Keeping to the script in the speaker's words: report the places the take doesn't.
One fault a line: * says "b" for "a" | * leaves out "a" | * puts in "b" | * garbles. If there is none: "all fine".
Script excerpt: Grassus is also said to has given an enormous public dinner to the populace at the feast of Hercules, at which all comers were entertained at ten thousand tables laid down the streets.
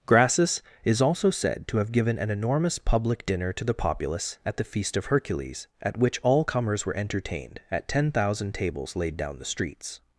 * says "have" for "has"